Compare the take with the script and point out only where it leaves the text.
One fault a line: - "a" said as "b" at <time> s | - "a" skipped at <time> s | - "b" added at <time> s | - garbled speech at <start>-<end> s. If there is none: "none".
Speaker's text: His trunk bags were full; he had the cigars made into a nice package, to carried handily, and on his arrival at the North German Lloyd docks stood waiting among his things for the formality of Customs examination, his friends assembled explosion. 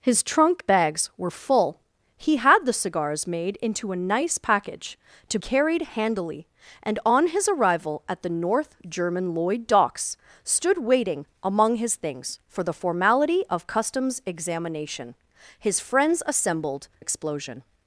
none